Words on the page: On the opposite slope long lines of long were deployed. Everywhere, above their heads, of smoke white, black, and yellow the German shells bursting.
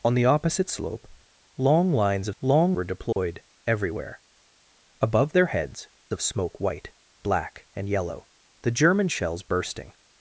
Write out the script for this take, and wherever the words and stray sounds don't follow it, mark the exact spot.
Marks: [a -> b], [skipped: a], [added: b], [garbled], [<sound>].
On the opposite slope long lines of long were deployed. [dropout] Everywhere, above their heads, of smoke white, black, and yellow the German shells bursting.